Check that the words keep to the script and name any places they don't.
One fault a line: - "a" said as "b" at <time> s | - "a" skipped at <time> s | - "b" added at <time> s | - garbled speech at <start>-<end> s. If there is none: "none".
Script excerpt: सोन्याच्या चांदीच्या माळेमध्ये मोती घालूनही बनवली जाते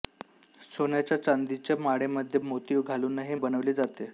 none